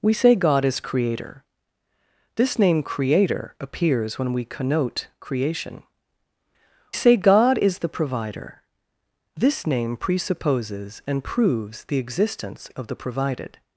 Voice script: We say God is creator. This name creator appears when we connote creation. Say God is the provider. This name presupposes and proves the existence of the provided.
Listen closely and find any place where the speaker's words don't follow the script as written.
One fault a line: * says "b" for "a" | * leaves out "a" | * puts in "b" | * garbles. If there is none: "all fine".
all fine